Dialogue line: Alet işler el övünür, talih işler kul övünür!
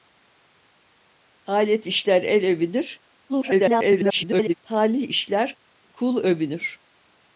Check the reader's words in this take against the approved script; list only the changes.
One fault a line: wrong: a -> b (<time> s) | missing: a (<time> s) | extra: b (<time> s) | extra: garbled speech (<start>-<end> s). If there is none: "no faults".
extra: garbled speech (3.3-4.5 s)